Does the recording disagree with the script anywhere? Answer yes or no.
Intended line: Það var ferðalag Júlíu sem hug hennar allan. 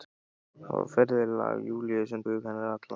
no